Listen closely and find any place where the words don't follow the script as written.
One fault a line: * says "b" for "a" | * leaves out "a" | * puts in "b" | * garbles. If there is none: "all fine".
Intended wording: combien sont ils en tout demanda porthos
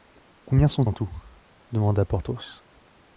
* leaves out "ils"